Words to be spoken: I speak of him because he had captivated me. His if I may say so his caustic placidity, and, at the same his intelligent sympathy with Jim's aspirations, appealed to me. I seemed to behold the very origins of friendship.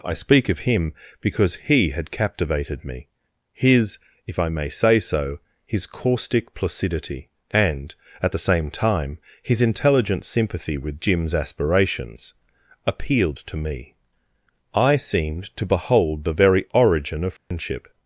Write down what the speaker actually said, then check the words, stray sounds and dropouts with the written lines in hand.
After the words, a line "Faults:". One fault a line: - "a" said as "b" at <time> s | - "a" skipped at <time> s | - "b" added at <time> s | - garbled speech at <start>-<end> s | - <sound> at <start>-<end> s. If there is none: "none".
I speak of him because he had captivated me. His if I may say so his caustic placidity, and, at the same time, his intelligent sympathy with Jim's aspirations, appealed to me. I seemed to behold the very origin of friendship.
Faults:
- "time" added at 8.7 s
- "origins" said as "origin" at 16.7 s
- dropout at 17.4-17.5 s